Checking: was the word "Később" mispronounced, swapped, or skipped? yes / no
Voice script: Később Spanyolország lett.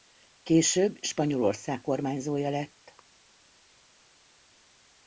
no